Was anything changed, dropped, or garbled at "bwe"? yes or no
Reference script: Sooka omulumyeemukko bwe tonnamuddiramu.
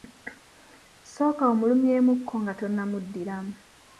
yes